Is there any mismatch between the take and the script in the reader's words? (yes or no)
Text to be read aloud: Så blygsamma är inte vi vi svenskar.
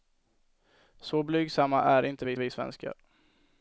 no